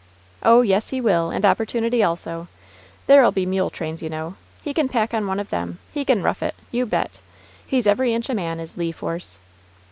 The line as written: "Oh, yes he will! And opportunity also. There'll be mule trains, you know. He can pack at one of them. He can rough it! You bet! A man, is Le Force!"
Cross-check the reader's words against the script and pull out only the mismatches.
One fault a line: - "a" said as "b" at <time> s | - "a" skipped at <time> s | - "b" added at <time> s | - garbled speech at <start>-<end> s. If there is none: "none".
- "at" said as "on" at 5.1 s
- "He's every inch" added at 7.6 s